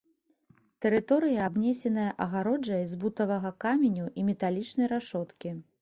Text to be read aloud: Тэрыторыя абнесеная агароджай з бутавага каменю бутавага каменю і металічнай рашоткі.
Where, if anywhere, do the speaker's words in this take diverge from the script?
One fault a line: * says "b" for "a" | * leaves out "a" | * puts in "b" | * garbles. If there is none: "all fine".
* leaves out "бутавага каменю"